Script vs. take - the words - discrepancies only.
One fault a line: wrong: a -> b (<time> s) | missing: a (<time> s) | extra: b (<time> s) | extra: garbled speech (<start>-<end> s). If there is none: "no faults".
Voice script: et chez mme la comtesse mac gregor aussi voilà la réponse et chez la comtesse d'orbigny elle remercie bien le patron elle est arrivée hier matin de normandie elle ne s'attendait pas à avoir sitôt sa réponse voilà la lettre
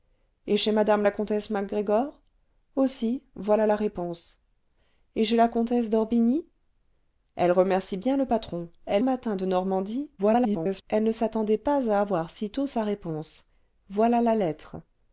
missing: est arrivée hier (9.0 s)
extra: garbled speech (10.2-10.8 s)